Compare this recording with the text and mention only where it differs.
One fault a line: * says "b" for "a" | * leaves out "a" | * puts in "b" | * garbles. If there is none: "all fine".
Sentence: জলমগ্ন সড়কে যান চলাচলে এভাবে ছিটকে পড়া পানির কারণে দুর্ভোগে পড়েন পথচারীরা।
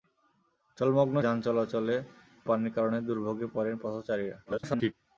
* leaves out "সড়কে"
* leaves out "এভাবে ছিটকে পড়া"
* garbles